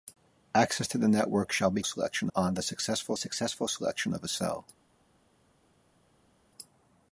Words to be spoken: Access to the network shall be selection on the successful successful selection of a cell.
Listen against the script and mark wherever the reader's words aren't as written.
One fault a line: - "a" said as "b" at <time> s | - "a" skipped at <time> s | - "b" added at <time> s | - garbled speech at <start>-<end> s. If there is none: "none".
none